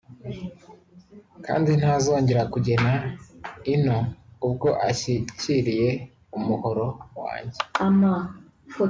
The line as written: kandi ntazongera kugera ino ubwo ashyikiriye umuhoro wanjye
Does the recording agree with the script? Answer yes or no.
yes